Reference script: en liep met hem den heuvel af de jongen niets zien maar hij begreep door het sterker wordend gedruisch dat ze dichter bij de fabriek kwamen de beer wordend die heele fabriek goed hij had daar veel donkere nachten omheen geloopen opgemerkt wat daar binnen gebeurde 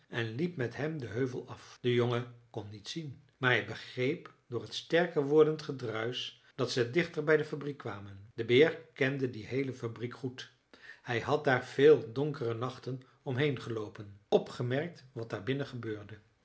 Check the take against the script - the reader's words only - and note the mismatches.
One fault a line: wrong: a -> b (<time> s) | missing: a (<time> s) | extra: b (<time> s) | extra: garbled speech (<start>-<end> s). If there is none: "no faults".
extra: kon (2.5 s)
wrong: wordend -> kende (8.9 s)